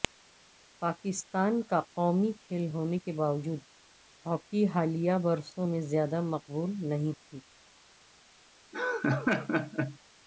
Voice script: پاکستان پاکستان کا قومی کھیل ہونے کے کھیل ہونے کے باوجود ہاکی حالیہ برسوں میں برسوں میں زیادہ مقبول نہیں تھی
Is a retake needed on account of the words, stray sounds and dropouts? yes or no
yes